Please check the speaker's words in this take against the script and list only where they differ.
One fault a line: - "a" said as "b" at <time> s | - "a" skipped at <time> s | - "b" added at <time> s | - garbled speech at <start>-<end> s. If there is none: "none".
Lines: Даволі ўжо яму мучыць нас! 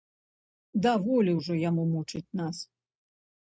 none